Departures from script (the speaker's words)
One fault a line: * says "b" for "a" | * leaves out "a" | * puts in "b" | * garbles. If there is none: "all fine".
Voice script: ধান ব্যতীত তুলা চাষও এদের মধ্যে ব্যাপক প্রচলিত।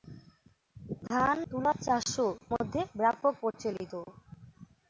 * leaves out "ব্যতীত"
* leaves out "এদের"